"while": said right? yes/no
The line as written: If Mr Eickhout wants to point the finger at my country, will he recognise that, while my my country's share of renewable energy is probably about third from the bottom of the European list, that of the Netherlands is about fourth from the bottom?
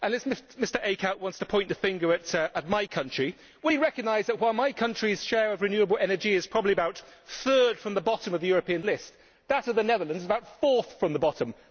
yes